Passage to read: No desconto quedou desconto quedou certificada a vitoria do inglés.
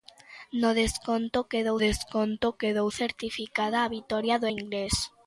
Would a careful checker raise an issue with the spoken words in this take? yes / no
no